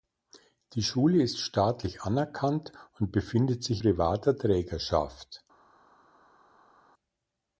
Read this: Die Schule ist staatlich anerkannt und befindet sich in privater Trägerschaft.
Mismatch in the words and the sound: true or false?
true